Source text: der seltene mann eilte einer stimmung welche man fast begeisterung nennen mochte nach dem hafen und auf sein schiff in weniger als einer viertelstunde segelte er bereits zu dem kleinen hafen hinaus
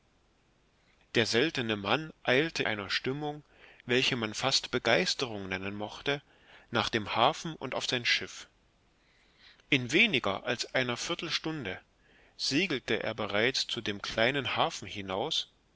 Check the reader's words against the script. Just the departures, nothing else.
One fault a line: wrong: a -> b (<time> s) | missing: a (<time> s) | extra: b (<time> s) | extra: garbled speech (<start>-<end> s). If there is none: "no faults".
no faults